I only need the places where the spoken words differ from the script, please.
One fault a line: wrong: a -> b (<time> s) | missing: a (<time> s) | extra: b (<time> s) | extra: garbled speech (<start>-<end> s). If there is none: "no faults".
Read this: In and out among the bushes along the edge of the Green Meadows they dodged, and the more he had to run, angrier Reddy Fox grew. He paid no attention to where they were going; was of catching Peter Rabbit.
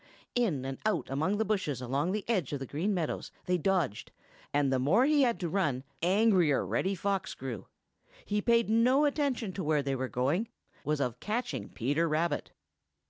no faults